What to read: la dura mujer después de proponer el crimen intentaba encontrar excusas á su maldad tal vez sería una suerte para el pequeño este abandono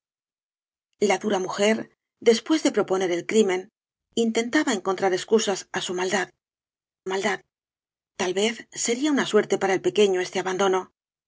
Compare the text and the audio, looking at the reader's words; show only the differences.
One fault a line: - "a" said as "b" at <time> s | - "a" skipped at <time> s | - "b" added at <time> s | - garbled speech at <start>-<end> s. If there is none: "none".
- "maldad" added at 7.1 s